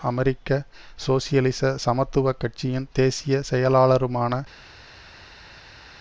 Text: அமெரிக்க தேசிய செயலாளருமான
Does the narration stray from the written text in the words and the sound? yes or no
yes